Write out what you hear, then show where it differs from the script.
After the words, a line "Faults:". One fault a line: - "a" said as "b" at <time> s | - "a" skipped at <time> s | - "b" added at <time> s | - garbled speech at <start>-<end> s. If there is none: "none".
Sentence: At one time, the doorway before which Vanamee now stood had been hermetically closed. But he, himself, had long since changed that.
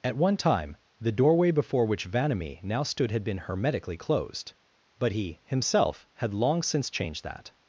At one time, the doorway before which Vanamee now stood had been hermetically closed. But he, himself, had long since changed that.
Faults:
none